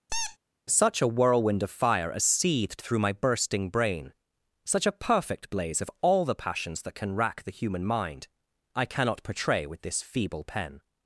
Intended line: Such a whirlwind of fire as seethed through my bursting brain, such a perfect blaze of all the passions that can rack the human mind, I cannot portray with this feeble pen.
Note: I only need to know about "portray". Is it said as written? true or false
true